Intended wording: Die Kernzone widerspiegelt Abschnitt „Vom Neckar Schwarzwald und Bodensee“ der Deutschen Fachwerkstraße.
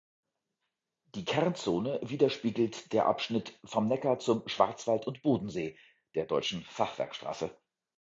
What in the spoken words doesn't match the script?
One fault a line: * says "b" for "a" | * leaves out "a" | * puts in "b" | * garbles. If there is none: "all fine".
* puts in "der"
* puts in "zum"